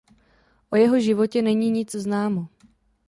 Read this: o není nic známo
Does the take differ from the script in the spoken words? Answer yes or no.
yes